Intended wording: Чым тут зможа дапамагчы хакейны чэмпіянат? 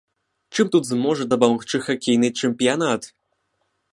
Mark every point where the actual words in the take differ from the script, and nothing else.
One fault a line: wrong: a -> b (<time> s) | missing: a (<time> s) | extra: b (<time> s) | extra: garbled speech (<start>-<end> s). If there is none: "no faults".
no faults